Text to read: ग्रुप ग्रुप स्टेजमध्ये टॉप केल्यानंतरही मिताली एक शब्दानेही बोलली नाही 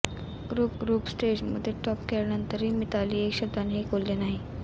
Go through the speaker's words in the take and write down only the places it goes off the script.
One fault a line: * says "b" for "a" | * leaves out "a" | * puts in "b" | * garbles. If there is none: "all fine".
all fine